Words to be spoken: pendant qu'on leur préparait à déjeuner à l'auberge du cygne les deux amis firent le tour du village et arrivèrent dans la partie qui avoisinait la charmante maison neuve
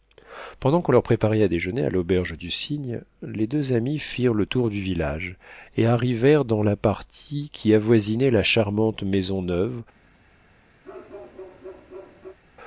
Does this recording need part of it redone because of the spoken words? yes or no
no